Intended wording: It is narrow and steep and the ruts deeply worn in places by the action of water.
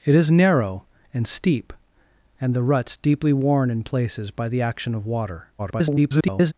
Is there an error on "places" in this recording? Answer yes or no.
no